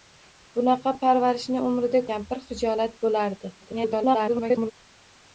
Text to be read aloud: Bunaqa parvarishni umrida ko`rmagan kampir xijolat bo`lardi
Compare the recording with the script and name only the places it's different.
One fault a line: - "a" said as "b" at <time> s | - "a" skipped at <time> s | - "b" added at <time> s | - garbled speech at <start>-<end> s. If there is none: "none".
- "ko`rmagan" skipped at 2.0 s
- garbled speech at 3.6-4.7 s